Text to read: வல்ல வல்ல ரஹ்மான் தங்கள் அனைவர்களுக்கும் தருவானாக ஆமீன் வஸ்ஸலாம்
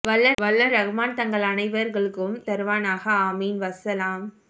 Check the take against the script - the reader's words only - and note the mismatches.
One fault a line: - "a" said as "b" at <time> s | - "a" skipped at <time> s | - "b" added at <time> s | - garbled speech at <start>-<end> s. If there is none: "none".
none